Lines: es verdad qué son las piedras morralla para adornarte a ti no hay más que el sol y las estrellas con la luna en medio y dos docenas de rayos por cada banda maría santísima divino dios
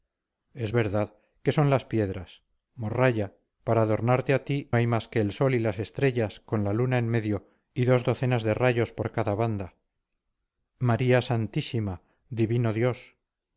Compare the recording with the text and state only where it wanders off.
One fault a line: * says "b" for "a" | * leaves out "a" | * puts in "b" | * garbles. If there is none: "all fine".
* leaves out "no"